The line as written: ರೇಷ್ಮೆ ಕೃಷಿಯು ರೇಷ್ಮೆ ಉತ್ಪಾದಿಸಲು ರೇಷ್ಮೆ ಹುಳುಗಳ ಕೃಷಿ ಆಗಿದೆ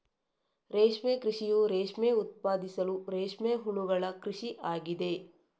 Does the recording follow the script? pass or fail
pass